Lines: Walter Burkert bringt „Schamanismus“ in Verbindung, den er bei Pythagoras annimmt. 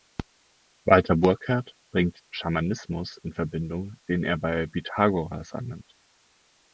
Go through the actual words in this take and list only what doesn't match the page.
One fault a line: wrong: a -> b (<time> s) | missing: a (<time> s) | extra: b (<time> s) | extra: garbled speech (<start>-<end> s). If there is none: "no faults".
no faults